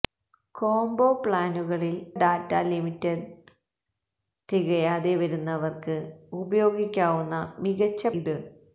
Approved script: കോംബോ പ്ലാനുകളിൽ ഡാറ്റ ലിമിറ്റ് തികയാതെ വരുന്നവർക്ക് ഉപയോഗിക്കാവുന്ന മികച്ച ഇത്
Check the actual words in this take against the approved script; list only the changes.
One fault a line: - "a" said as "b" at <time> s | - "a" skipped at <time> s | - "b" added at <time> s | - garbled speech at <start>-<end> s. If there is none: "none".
none